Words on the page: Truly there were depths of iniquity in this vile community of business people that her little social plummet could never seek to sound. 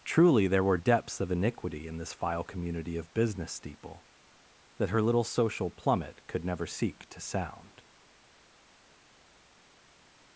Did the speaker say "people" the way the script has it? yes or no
no